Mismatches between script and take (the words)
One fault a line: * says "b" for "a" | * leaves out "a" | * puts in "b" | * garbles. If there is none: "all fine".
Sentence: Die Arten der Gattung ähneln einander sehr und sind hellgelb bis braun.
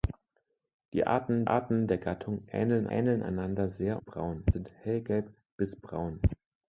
* puts in "Arten"
* puts in "ähneln"
* says "braun" for "und"